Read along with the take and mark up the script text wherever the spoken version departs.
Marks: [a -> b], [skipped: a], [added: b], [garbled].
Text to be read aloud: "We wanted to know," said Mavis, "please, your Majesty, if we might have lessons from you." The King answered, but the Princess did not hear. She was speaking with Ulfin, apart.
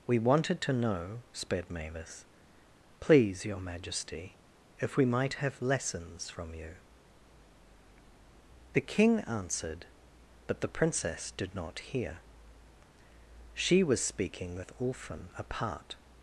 "We wanted to know," [said -> sped] Mavis, "please, your Majesty, if we might have lessons from you." The King answered, but the Princess did not hear. She was speaking with Ulfin, apart.